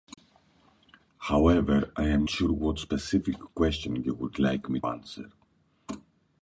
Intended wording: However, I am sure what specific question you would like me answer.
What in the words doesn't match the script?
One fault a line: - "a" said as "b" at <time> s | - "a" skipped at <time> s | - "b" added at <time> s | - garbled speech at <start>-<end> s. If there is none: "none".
none